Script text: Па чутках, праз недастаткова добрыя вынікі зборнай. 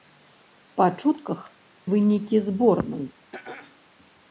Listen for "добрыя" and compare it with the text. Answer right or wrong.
wrong